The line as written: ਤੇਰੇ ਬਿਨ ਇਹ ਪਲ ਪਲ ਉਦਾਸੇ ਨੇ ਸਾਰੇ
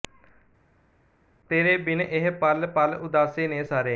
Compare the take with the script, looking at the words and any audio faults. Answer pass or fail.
pass